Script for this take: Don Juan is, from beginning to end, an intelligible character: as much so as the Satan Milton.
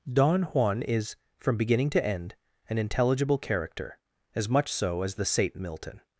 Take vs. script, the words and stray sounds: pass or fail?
pass